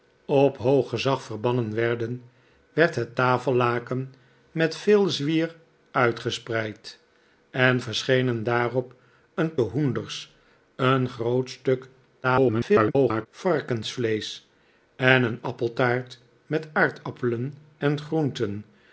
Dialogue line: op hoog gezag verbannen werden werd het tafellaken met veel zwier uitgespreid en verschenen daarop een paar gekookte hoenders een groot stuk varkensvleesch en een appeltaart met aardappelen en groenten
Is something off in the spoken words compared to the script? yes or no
yes